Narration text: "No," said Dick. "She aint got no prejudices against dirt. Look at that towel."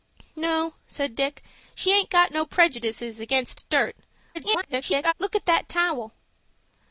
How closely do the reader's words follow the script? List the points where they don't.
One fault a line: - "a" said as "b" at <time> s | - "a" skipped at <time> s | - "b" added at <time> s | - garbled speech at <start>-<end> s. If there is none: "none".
- garbled speech at 4.3-5.1 s